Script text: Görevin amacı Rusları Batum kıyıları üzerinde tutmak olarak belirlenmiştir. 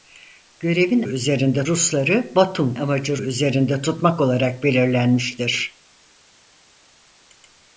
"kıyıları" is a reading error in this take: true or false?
true